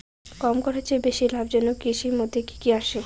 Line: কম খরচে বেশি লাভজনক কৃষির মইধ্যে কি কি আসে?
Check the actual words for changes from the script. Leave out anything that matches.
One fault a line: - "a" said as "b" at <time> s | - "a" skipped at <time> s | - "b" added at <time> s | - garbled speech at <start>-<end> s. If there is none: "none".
none